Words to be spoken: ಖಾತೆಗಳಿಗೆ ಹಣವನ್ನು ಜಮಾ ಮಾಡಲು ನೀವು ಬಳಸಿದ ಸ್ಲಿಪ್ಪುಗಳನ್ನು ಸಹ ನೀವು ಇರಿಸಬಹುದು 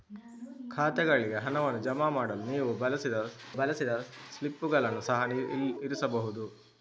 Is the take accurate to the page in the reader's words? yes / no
no